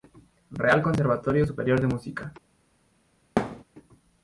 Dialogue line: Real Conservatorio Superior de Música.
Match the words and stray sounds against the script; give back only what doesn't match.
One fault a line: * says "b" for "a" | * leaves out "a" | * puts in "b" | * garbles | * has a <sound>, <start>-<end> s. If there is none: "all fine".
* has a thud, 3.4-3.6 s